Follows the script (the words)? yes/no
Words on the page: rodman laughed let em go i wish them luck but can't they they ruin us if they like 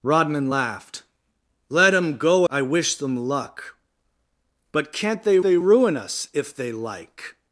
yes